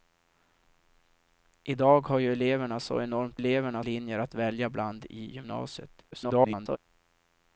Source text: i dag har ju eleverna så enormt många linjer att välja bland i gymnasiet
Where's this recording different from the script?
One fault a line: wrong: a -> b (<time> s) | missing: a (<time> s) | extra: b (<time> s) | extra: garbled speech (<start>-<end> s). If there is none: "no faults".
wrong: många -> eleverna (3.3 s)
extra: garbled speech (6.1-6.8 s)